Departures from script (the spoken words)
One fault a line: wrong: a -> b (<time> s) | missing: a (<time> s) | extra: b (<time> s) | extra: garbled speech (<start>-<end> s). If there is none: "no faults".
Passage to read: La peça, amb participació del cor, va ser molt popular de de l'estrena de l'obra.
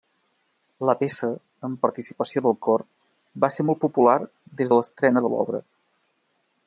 wrong: de -> des (4.6 s)